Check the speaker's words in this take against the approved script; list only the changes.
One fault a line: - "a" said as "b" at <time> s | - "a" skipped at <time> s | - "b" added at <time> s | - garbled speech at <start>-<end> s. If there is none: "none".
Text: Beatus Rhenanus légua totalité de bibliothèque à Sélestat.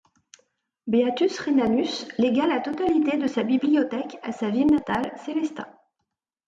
- "la" added at 2.5 s
- "sa" added at 3.3 s
- "sa ville natale" added at 4.3 s